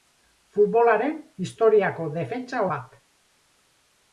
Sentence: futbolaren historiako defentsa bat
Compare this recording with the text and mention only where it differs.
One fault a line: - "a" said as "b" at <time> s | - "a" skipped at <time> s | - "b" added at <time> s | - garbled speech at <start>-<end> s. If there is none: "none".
none